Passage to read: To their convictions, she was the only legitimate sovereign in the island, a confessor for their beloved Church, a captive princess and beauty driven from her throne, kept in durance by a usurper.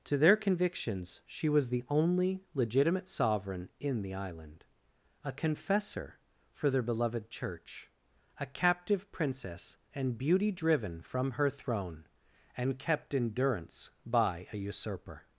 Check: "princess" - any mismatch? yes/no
no